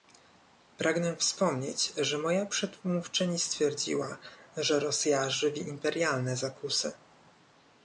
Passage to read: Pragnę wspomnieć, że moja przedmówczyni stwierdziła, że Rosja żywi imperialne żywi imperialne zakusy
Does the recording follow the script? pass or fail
fail